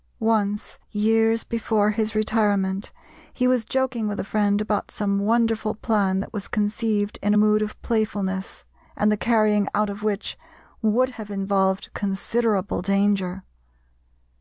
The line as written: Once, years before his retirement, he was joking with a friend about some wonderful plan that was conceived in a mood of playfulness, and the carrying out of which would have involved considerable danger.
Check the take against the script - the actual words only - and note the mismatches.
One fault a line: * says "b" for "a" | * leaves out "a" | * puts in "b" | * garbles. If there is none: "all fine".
all fine